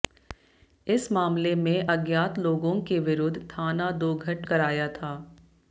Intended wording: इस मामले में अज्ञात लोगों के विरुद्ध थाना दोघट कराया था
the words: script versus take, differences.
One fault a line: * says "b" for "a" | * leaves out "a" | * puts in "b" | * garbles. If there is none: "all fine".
all fine